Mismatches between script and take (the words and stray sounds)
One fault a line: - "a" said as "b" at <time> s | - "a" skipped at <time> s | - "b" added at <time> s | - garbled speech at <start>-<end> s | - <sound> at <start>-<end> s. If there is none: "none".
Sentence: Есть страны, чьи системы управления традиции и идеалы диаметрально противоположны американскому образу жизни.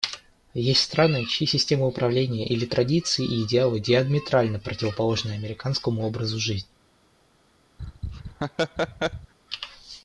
- "или" added at 2.5 s
- laugh at 7.8-9.3 s